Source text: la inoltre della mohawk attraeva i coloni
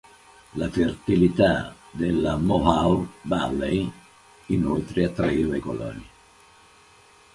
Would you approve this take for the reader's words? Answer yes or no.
no